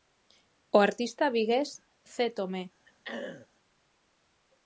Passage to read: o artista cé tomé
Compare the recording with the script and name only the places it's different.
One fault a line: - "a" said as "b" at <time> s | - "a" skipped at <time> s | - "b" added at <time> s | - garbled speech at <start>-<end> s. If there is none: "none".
- "vigués" added at 1.4 s